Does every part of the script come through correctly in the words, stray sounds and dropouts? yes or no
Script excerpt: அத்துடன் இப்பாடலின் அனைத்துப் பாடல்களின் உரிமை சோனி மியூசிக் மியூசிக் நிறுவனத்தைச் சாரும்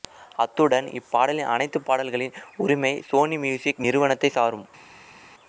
no